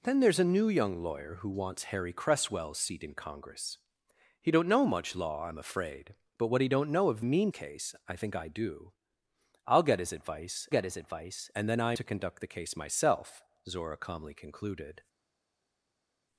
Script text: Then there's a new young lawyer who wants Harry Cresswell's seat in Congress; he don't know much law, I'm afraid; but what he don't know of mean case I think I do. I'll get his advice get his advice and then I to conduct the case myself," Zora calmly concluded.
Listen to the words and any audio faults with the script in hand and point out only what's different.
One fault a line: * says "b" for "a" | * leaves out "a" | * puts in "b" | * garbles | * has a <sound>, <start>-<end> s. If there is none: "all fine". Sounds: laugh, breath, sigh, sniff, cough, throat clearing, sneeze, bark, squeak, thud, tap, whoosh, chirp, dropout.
all fine